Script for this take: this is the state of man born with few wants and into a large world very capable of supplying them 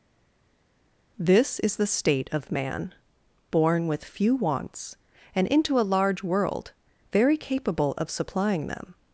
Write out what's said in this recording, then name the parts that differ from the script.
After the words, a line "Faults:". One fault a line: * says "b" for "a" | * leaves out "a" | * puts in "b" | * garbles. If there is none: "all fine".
this is the state of man born with few wants and into a large world very capable of supplying them
Faults:
all fine